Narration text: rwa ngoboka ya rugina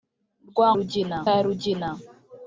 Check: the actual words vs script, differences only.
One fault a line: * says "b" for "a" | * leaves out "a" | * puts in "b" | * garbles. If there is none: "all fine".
* says "rugina" for "ngoboka"